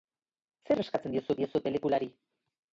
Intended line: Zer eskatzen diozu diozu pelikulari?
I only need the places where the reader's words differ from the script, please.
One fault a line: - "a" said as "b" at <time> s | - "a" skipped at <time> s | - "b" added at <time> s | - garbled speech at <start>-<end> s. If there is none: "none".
none